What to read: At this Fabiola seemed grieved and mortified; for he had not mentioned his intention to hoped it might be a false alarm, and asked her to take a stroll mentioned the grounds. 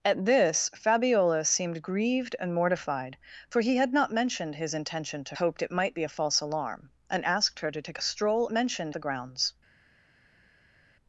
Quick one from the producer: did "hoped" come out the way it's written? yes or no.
yes